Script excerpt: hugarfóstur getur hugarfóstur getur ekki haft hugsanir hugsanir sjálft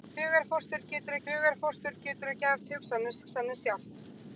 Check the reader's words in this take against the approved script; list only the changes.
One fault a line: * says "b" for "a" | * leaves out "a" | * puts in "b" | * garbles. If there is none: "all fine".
all fine